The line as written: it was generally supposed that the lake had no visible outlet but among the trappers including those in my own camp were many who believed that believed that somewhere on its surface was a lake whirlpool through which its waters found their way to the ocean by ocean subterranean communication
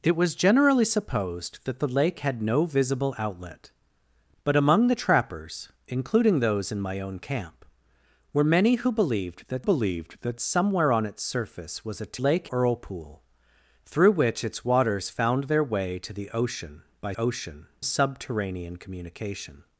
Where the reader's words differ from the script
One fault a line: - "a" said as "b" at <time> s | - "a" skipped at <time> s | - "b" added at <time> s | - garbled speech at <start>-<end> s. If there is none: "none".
none